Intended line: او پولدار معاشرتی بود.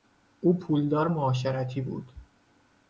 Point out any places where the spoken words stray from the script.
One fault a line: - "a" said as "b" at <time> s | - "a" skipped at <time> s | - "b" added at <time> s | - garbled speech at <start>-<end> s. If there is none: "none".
none